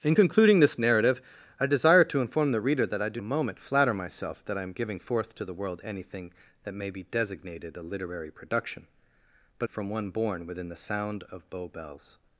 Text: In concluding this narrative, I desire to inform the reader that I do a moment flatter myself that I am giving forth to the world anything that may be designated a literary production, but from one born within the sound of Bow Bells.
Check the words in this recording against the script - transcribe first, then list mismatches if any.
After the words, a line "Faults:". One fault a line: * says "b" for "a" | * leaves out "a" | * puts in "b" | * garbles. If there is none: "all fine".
In concluding this narrative, I desire to inform the reader that I do a moment flatter myself that I am giving forth to the world anything that may be designated a literary production, but from one born within the sound of Bow Bells.
Faults:
all fine